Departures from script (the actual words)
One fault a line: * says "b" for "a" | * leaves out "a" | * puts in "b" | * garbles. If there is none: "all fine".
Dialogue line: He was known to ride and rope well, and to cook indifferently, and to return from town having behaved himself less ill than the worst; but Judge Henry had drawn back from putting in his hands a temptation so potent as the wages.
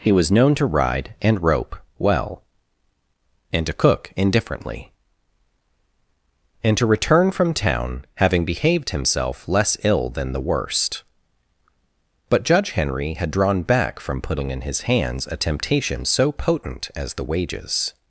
all fine